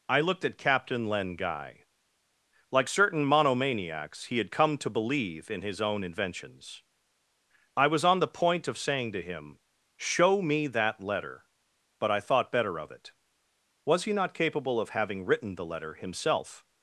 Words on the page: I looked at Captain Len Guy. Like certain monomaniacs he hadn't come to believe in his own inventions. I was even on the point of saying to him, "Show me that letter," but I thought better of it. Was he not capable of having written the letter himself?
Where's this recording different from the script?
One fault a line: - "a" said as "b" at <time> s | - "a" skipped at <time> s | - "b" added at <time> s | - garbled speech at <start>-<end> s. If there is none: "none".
- "hadn't" said as "had" at 4.4 s
- "even" skipped at 8.0 s